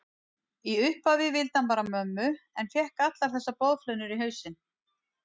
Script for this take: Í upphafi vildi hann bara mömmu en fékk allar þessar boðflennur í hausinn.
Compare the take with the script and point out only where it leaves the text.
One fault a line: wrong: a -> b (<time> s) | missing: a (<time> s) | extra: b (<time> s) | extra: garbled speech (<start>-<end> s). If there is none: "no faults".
no faults